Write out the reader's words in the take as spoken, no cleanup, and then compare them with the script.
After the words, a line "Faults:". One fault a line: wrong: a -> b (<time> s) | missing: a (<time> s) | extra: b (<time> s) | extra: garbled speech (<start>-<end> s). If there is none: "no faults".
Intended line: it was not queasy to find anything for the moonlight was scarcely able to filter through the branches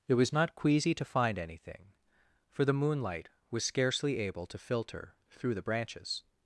it was not queasy to find anything for the moonlight was scarcely able to filter through the branches
Faults:
no faults